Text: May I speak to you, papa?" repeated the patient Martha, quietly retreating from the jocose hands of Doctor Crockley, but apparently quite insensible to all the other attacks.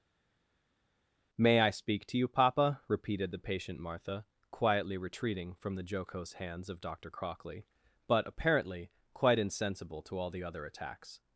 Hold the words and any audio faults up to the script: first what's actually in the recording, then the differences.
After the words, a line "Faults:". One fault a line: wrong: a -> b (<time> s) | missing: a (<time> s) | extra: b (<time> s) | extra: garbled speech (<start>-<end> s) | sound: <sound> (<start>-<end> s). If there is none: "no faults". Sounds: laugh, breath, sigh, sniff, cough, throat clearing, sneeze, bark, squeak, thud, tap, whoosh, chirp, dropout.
May I speak to you, papa?" repeated the patient Martha, quietly retreating from the jocose hands of Doctor Crockley, but apparently quite insensible to all the other attacks.
Faults:
no faults